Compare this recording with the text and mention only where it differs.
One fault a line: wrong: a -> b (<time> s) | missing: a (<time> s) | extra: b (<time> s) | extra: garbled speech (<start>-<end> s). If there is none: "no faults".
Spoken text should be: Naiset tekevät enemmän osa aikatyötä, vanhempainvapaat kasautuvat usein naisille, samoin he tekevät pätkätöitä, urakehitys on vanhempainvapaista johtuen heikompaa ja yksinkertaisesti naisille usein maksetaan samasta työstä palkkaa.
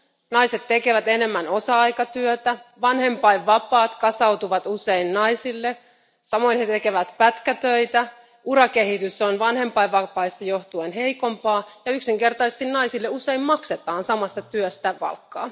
no faults